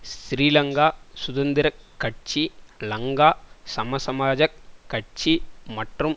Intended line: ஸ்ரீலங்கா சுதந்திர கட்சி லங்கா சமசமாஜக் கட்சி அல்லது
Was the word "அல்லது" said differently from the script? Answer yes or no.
yes